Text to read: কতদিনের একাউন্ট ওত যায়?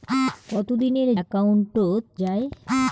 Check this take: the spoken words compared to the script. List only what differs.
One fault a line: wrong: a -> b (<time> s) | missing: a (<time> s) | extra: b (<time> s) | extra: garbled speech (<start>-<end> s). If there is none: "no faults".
no faults